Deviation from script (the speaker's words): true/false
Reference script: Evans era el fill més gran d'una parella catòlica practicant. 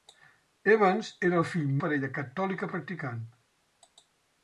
true